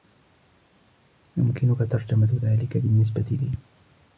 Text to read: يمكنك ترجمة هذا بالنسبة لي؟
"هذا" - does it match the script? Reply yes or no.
no